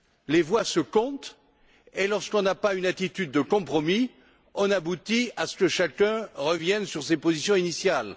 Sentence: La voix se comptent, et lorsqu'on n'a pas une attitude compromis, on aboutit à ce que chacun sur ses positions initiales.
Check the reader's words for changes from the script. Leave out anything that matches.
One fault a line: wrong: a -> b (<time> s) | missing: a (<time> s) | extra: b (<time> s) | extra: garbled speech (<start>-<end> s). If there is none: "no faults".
wrong: La -> Les (0.3 s)
extra: de (3.3 s)
extra: revienne (6.3 s)